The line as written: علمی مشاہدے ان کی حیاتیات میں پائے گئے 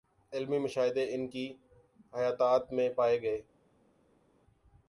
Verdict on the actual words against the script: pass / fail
pass